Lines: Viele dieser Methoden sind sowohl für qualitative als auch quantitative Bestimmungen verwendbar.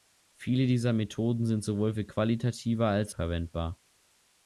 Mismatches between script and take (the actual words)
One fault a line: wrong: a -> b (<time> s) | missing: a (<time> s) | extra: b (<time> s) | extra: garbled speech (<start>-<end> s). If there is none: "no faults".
missing: auch quantitative Bestimmungen (3.1 s)